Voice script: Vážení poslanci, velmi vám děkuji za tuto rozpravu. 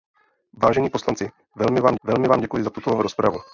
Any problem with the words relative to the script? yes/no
yes